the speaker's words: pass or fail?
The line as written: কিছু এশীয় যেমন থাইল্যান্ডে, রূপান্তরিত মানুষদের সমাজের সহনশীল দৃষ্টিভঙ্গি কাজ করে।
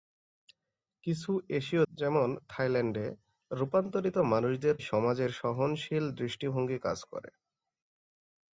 pass